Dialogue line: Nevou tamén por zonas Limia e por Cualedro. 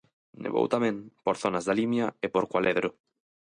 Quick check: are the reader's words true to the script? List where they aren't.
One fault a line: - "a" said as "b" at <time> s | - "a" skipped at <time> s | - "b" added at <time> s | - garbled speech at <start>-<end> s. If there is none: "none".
- "da" added at 1.7 s